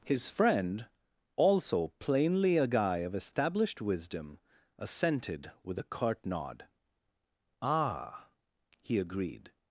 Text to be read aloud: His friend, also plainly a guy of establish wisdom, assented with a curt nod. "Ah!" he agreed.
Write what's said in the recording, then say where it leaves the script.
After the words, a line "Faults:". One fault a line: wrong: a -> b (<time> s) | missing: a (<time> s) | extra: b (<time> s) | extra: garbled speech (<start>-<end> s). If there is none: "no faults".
His friend, also plainly a guy of established wisdom, assented with a curt nod. "Ah!" he agreed.
Faults:
wrong: establish -> established (3.1 s)